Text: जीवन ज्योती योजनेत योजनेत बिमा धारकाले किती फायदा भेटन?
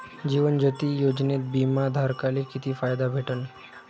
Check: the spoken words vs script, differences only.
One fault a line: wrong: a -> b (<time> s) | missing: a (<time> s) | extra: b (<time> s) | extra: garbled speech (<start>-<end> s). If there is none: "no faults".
missing: योजनेत (1.4 s)